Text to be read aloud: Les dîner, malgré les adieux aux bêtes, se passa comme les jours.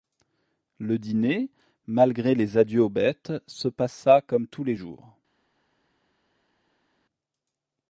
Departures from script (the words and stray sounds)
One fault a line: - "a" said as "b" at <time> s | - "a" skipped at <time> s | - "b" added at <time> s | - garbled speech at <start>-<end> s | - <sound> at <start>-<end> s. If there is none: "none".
- "Les" said as "Le" at 0.8 s
- "tous" added at 4.5 s